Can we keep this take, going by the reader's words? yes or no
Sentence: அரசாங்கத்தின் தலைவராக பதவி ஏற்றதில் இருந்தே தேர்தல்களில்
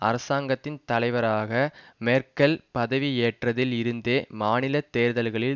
no